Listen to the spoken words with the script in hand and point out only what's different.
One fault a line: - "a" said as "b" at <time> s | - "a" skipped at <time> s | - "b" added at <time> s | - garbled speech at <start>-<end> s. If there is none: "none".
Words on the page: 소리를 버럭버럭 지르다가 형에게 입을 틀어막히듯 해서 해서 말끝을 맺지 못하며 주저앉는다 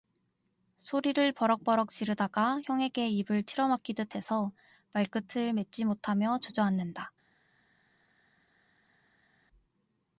- "해서" skipped at 4.5 s